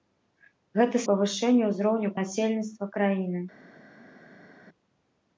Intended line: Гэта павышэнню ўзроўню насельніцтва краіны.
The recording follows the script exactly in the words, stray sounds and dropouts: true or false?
true